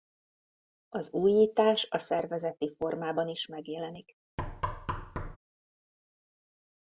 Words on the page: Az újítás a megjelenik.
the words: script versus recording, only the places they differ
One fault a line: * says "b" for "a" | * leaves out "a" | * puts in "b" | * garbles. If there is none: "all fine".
* puts in "szervezeti formában is"